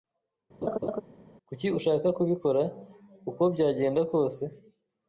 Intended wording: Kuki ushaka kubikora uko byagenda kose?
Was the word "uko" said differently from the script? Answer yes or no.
no